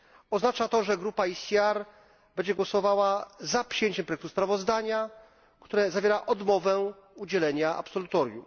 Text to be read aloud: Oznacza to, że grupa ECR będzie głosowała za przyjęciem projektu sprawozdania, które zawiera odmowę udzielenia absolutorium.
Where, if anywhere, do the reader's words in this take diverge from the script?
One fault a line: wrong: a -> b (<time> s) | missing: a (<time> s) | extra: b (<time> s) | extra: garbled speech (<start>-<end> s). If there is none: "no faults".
no faults